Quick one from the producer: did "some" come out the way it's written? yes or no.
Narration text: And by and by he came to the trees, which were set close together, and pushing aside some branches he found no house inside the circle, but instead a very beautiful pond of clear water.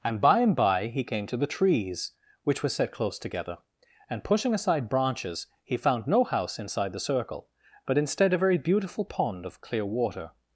no